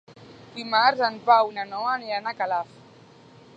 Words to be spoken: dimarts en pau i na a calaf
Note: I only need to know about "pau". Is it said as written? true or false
true